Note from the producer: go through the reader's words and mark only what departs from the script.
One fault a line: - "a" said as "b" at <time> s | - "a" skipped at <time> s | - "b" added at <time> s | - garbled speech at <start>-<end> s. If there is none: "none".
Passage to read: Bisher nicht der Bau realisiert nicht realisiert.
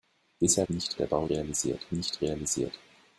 none